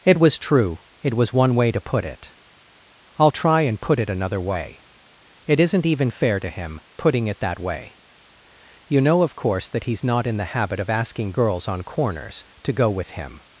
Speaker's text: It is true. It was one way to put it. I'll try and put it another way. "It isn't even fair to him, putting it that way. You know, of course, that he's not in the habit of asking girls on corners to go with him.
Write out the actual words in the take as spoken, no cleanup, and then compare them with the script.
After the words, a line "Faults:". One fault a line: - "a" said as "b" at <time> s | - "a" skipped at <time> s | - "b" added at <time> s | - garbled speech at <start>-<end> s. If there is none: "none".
It was true. It was one way to put it. I'll try and put it another way. "It isn't even fair to him, putting it that way. You know, of course, that he's not in the habit of asking girls on corners to go with him.
Faults:
- "is" said as "was" at 0.2 s